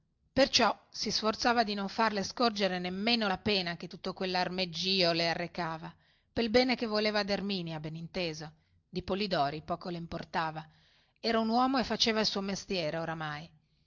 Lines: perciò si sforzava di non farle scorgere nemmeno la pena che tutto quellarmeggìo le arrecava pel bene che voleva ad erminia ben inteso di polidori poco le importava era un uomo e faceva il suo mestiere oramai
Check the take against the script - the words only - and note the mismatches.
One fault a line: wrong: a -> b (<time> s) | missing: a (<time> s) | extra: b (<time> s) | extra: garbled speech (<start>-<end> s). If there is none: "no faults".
no faults